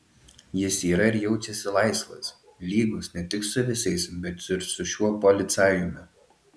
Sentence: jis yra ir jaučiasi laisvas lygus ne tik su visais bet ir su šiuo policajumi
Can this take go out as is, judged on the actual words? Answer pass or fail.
pass